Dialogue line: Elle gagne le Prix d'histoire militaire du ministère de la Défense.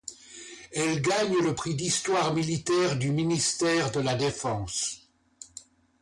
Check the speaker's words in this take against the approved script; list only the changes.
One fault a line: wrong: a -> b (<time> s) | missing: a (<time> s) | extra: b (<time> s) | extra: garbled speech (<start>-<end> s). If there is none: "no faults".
no faults